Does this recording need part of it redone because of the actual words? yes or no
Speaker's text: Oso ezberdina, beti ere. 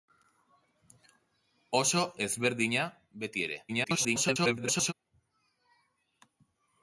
yes